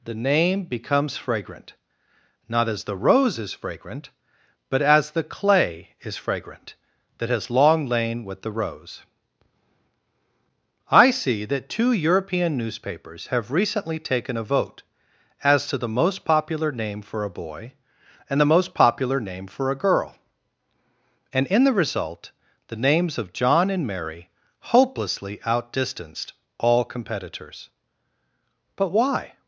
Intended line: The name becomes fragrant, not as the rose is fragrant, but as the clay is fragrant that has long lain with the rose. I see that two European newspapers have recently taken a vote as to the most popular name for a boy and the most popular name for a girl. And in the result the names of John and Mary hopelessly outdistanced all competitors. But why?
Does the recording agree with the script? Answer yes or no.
yes